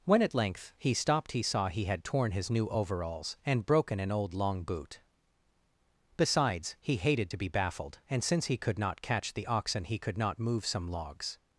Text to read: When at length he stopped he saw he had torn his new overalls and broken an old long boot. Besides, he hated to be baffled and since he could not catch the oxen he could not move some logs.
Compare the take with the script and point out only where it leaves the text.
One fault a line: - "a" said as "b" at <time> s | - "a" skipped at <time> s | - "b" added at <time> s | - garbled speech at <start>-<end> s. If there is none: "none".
none